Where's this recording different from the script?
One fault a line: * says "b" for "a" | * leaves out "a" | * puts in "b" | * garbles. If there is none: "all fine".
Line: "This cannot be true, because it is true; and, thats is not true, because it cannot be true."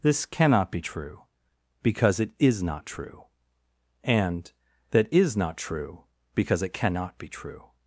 * puts in "not"
* says "that" for "thats"